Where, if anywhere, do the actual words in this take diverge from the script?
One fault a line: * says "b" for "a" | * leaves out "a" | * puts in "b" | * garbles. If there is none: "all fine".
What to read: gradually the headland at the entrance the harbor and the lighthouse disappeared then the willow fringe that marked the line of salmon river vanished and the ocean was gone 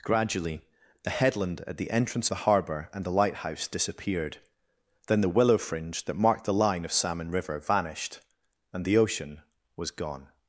all fine